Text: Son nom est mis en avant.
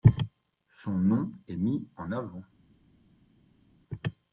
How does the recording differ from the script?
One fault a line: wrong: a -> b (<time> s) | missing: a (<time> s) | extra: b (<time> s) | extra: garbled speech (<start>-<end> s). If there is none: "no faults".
no faults